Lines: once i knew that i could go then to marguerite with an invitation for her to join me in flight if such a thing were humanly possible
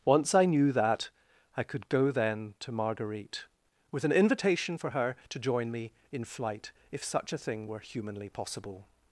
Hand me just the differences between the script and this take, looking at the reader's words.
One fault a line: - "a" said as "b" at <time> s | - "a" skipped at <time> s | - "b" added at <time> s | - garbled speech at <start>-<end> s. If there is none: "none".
none